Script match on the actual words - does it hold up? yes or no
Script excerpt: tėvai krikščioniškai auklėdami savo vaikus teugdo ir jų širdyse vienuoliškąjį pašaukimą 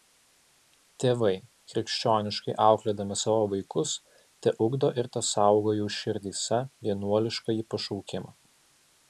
no